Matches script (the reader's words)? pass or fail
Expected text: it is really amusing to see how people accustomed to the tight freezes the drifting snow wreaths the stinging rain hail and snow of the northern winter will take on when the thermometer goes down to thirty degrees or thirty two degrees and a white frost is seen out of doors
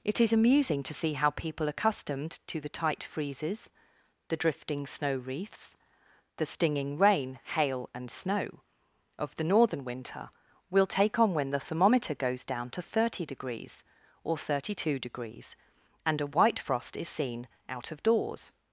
fail